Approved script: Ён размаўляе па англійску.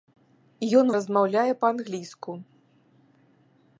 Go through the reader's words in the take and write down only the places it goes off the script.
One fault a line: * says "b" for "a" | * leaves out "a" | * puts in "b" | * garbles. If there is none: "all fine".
all fine